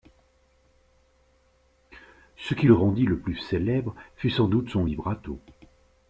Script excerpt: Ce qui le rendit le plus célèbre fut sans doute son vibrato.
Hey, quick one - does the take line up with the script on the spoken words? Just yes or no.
yes